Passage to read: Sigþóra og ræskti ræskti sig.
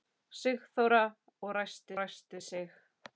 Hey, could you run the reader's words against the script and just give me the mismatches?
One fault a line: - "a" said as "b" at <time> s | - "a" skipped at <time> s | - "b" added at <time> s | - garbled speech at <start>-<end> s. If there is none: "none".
none